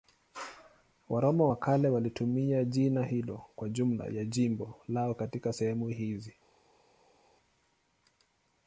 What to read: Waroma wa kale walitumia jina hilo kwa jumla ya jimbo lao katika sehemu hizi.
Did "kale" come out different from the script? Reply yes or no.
no